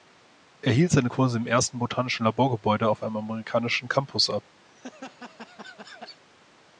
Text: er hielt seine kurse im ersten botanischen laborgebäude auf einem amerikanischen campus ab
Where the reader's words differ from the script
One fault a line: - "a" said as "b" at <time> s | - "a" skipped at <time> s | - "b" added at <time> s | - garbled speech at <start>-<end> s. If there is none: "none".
none